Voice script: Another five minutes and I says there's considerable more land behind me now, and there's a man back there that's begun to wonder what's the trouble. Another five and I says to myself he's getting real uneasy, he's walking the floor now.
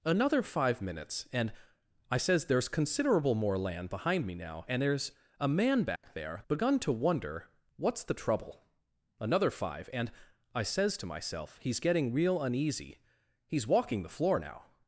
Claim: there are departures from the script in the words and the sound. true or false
true